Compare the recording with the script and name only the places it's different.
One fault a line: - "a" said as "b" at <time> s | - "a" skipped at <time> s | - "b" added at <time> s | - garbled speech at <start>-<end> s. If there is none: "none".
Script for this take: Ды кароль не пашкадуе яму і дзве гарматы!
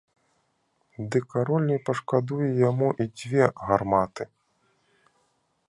none